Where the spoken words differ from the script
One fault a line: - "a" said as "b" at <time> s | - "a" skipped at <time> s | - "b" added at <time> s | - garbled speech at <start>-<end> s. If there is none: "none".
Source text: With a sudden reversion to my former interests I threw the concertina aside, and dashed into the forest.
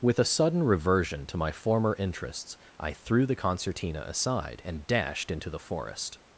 none